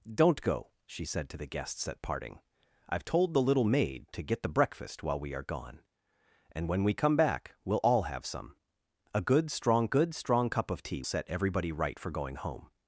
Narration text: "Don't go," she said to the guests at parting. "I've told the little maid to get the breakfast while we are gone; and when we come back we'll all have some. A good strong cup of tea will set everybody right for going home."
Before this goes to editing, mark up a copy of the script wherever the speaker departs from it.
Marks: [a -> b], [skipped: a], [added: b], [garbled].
"Don't go," she said to the guests at parting. "I've told the little maid to get the breakfast while we are gone; and when we come back we'll all have some. A good strong [added: good strong] cup of tea [skipped: will] set everybody right for going home."